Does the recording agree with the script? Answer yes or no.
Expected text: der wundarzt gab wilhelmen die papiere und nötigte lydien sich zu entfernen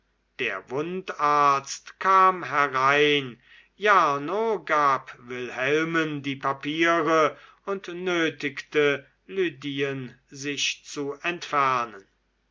no